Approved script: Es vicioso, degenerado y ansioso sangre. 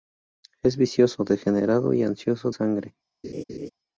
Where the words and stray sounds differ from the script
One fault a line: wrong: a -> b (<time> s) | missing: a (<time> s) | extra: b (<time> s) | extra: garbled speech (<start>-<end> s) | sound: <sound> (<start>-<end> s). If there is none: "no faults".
sound: laugh (3.2-3.7 s)